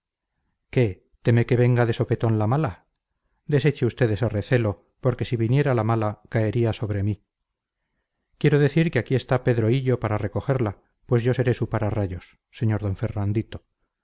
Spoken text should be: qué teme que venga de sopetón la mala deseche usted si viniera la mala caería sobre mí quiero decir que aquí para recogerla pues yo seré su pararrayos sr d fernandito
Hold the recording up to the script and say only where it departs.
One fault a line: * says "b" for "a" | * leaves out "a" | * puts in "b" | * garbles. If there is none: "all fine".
* puts in "ese recelo porque"
* puts in "está pedro hillo"